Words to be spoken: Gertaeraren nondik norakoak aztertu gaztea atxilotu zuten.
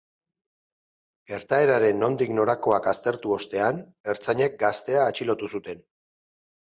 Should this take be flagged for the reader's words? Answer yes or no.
yes